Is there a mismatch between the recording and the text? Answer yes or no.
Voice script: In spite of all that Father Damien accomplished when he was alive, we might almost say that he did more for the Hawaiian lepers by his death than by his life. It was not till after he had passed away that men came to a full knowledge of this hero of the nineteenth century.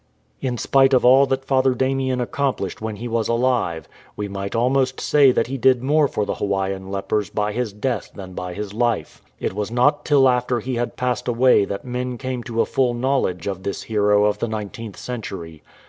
no